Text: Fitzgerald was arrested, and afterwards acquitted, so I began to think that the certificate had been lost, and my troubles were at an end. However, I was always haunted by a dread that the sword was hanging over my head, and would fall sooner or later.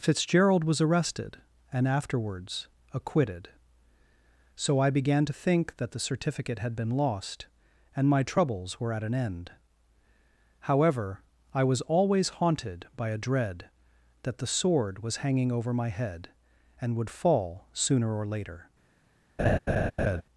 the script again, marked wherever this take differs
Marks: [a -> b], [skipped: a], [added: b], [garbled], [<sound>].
Fitzgerald was arrested, and afterwards acquitted, so I began to think that the certificate had been lost, and my troubles were at an end. However, I was always haunted by a dread that the sword was hanging over my head, and would fall sooner or later. [laugh]